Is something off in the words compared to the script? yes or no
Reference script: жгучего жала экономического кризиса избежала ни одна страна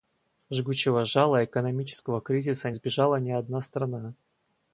no